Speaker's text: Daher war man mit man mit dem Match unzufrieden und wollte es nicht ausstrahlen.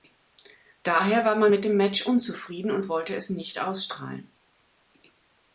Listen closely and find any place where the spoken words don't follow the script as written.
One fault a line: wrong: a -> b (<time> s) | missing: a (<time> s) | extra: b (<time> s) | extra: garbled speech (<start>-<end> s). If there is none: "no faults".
missing: man mit (1.6 s)